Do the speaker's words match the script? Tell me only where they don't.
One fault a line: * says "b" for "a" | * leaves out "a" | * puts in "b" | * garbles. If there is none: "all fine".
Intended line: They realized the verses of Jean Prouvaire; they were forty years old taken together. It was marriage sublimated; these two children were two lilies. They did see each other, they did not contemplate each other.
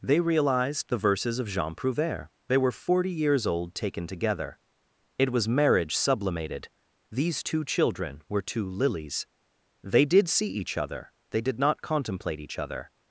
all fine